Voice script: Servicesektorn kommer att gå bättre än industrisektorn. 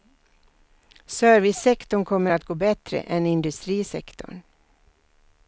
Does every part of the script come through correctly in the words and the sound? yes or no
yes